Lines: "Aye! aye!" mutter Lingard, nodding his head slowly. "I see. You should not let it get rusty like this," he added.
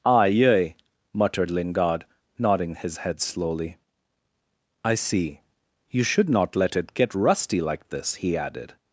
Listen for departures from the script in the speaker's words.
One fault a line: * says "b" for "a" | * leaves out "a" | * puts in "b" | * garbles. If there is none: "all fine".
* says "muttered" for "mutter"